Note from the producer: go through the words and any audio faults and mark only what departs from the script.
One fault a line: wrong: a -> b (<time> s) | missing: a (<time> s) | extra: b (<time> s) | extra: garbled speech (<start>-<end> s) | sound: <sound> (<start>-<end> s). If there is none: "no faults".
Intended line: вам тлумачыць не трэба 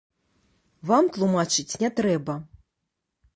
no faults